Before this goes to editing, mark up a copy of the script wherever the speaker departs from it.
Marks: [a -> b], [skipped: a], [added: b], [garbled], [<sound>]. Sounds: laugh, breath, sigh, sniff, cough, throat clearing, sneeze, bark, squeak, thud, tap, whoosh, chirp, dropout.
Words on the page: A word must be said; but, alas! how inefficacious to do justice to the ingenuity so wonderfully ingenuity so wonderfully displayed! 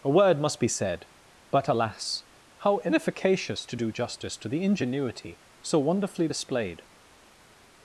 A word must be said; but, alas! how inefficacious to do justice to the ingenuity so wonderfully [skipped: ingenuity so wonderfully] displayed!